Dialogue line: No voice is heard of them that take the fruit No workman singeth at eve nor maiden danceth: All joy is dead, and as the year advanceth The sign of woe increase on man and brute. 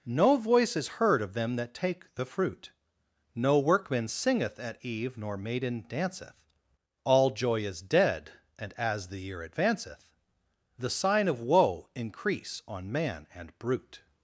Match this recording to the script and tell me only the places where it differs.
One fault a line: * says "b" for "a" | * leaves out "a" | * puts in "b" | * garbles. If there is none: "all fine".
all fine